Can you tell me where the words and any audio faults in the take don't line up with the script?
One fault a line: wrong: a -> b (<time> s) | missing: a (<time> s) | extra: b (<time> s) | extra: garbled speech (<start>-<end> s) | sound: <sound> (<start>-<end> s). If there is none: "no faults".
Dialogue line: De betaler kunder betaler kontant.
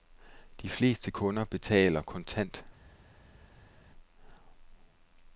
wrong: betaler -> fleste (0.7 s)